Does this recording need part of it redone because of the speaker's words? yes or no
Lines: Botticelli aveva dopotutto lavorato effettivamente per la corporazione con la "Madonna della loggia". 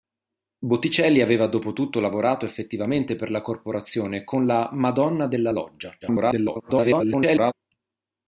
yes